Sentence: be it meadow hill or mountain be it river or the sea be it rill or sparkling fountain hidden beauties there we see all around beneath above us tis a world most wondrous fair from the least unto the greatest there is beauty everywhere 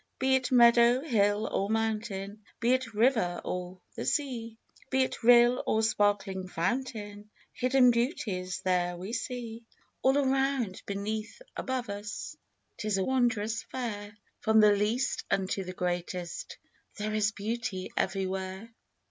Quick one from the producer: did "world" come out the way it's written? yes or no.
no